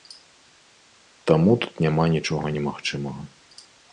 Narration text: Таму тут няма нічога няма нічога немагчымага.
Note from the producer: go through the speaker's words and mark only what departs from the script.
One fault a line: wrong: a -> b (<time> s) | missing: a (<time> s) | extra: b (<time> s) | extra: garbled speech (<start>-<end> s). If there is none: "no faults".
missing: няма нічога (2.5 s)